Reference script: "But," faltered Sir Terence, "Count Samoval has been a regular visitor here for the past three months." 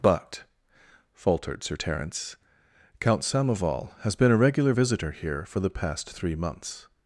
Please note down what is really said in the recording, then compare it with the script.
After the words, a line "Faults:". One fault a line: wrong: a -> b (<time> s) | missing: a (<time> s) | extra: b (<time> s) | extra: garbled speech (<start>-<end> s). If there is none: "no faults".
"But," faltered Sir Terence, "Count Samoval has been a regular visitor here for the past three months."
Faults:
no faults